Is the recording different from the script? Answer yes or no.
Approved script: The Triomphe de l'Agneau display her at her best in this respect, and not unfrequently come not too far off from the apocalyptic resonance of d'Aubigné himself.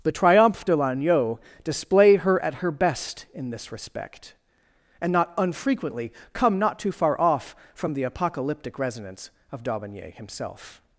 no